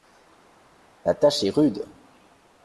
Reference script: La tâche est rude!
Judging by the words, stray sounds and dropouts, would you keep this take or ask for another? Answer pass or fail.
pass